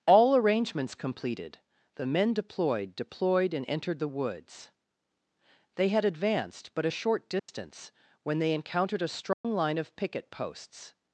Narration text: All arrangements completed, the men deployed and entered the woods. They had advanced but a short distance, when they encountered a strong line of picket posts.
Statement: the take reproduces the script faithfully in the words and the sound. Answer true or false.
false